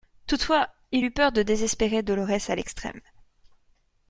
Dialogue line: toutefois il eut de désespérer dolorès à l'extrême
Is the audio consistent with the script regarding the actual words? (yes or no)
no